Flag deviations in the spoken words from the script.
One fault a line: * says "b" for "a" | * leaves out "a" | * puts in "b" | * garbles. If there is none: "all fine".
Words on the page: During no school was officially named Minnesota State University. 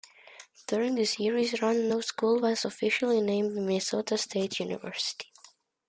* puts in "the series run"